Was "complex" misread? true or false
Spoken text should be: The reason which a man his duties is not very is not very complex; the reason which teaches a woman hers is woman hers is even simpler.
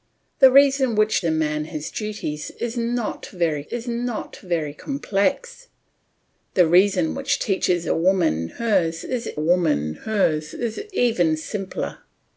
false